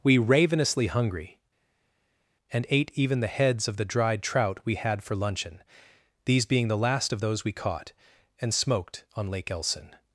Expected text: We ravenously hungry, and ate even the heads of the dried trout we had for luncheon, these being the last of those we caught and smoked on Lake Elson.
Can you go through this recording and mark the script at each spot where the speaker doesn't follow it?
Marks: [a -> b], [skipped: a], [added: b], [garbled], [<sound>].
We ravenously hungry, and ate even the heads of the dried trout we had for luncheon, these being the last of those we caught and smoked on Lake Elson.